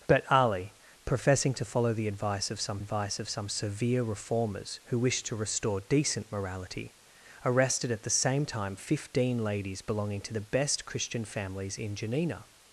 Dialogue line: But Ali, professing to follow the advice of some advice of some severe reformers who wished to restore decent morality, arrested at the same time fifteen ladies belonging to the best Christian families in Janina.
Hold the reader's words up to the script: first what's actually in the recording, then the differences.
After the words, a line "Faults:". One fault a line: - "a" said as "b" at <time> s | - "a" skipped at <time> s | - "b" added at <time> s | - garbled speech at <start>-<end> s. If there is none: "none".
But Ali, professing to follow the advice of some advice of some severe reformers who wished to restore decent morality, arrested at the same time fifteen ladies belonging to the best Christian families in Janina.
Faults:
none